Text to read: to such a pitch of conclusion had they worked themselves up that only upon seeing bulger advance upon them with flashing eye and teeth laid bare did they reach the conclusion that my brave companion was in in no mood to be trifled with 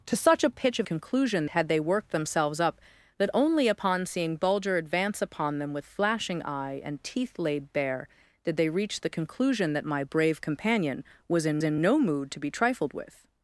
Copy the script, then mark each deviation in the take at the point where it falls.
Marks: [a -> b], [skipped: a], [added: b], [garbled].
to such a pitch of conclusion had they worked themselves up that only upon seeing bulger advance upon them with flashing eye and teeth laid bare did they reach the conclusion that my brave companion was in in no mood to be trifled with